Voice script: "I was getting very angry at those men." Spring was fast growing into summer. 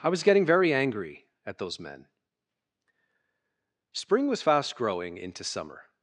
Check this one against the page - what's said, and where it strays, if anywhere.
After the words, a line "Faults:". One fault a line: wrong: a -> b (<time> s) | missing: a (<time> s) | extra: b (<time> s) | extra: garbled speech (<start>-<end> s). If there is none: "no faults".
"I was getting very angry at those men." Spring was fast growing into summer.
Faults:
no faults